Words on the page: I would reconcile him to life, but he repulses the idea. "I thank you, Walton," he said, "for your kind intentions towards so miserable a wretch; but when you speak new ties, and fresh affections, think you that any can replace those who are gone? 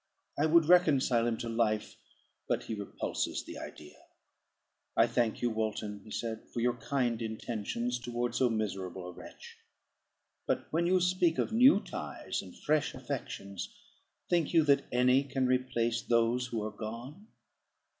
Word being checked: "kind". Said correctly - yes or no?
yes